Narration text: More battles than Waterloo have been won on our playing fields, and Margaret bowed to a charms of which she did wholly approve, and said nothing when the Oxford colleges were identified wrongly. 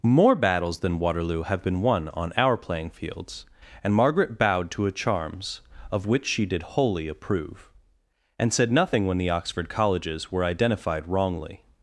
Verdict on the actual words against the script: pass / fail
pass